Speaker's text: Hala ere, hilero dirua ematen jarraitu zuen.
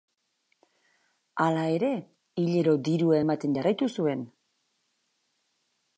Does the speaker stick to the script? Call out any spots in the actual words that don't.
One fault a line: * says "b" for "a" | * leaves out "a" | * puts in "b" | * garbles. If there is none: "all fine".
all fine